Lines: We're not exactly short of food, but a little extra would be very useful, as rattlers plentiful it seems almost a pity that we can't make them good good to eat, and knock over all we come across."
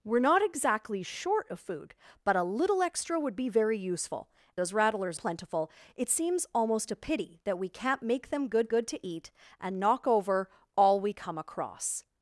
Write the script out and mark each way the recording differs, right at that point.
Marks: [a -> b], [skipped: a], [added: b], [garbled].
We're not exactly short of food, but a little extra would be very useful, as rattlers plentiful it seems almost a pity that we can't make them good good to eat, and knock over all we come across."